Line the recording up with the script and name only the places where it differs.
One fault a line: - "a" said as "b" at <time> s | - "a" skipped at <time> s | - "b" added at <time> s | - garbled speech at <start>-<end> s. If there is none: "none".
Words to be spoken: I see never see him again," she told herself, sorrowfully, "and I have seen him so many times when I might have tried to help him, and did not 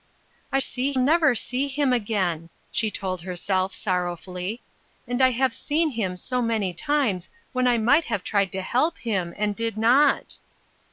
none